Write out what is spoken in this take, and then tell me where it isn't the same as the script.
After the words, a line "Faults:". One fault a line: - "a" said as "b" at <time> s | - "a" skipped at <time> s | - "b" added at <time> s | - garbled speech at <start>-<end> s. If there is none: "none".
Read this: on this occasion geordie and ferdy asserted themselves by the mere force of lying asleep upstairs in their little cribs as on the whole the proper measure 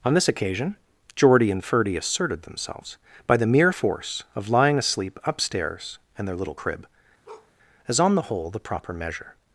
on this occasion geordie and ferdy asserted themselves by the mere force of lying asleep upstairs in their little crib as on the whole the proper measure
Faults:
- "cribs" said as "crib" at 6.5 s